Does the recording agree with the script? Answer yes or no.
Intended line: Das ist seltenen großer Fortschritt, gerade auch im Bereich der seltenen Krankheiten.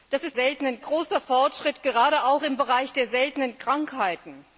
yes